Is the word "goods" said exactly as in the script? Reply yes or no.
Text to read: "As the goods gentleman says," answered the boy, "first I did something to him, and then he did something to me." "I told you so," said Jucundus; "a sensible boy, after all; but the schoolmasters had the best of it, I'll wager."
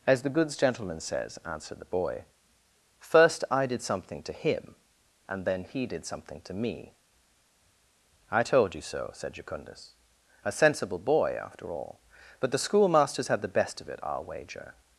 yes